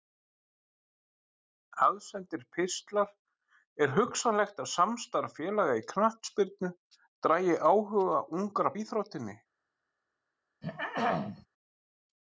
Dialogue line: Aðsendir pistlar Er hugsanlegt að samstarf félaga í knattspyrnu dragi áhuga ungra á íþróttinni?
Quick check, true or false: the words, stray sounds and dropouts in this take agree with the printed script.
false